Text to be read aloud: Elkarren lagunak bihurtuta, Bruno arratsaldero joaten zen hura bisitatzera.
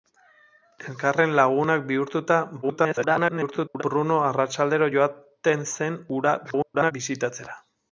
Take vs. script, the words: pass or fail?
fail